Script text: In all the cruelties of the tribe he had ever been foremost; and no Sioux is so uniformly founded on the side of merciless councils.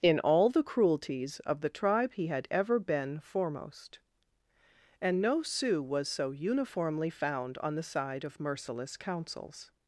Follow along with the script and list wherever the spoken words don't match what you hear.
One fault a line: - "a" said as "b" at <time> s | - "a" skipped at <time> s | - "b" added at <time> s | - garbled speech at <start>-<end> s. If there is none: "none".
- "is" said as "was" at 5.8 s
- "founded" said as "found" at 7.1 s